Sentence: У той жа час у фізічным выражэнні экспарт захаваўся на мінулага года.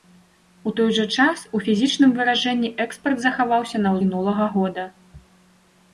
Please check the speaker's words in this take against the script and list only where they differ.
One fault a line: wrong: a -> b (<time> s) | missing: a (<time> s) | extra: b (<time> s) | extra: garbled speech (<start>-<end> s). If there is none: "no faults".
no faults